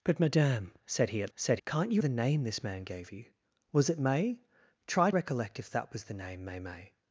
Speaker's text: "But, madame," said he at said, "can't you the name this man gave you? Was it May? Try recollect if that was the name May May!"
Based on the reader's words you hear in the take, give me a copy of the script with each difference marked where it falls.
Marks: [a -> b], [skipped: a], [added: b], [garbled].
"But, madame," said he at said, "can't you the name this man gave you? Was it May? Try recollect if that was the name May May!"